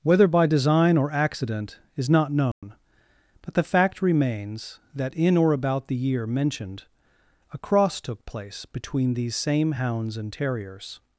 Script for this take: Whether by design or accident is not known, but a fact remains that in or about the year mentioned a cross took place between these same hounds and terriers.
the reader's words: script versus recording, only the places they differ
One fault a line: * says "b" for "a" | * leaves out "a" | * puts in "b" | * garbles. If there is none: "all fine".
* says "the" for "a"